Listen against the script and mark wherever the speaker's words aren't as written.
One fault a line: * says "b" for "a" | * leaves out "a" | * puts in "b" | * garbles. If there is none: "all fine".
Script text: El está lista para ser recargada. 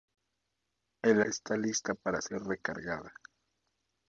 all fine